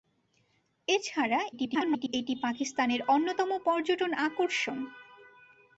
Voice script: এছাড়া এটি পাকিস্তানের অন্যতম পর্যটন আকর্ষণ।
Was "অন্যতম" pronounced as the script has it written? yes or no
yes